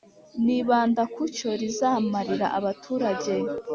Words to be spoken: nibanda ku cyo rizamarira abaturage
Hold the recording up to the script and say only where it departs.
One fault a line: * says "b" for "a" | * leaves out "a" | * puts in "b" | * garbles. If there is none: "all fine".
all fine